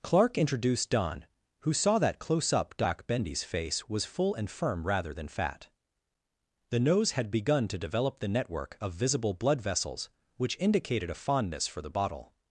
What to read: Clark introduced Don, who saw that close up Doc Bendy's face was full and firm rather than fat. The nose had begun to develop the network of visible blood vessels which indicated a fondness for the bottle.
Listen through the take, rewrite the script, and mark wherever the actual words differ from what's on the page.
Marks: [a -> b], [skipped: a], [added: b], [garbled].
Clark introduced Don, who saw that close up Doc Bendy's face was full and firm rather than fat. The nose had begun to develop the network of visible blood vessels which indicated a fondness for the bottle.